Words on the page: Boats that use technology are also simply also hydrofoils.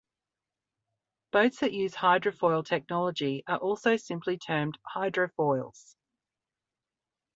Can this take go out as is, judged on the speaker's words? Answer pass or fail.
fail